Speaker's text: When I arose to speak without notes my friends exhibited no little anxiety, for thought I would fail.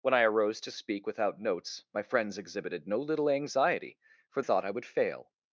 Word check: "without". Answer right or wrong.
right